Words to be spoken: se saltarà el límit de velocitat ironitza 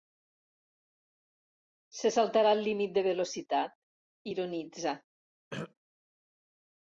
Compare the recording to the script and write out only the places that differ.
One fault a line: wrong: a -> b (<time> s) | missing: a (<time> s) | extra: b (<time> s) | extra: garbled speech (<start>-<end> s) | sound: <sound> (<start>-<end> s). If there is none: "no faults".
sound: throat clearing (5.5-5.7 s)